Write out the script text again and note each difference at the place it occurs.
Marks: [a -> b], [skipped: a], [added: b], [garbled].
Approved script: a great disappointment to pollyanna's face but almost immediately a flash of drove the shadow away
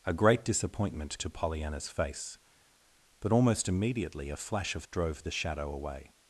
a great disappointment to pollyanna's face but almost immediately a flash of drove the shadow away